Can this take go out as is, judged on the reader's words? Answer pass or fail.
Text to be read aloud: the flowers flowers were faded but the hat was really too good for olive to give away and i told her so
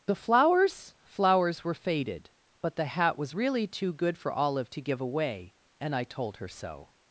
pass